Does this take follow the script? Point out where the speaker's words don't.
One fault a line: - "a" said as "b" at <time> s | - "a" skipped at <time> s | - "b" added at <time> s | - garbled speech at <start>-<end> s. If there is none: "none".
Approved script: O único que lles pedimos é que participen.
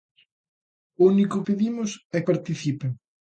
- "que lles" skipped at 1.4 s
- "que" skipped at 2.2 s